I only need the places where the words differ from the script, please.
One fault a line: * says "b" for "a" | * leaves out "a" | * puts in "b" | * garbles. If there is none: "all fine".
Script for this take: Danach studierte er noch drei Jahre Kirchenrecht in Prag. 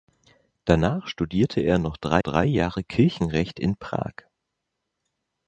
* puts in "drei"